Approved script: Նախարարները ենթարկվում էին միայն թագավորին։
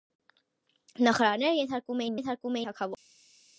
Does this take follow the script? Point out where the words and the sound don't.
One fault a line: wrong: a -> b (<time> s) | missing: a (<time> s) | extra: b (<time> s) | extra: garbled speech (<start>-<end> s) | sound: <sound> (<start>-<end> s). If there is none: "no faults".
wrong: միայն -> ենթարկվում (2.1 s)